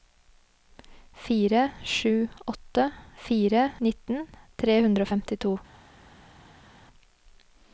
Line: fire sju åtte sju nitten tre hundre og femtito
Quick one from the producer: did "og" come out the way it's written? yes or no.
yes